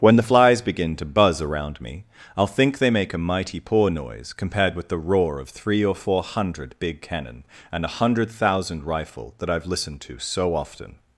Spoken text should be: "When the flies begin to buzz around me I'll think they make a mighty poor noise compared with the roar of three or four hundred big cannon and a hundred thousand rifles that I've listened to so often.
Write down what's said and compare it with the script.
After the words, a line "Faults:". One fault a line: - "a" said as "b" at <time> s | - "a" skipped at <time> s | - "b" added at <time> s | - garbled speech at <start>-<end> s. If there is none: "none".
"When the flies begin to buzz around me I'll think they make a mighty poor noise compared with the roar of three or four hundred big cannon and a hundred thousand rifle that I've listened to so often.
Faults:
- "rifles" said as "rifle" at 8.8 s